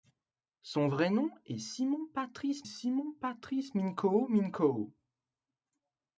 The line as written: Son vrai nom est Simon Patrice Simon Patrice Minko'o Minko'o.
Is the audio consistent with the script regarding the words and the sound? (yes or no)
yes